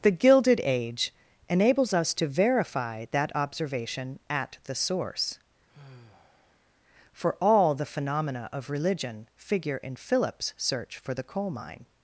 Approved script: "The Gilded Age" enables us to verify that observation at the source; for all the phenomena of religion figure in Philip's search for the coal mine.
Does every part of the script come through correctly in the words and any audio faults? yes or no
no